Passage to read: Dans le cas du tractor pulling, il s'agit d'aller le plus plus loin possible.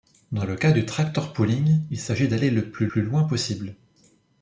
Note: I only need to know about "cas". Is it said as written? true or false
true